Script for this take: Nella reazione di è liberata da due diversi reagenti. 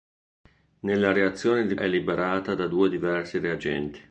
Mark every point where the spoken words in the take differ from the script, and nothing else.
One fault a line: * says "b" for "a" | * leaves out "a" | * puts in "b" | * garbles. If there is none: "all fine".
all fine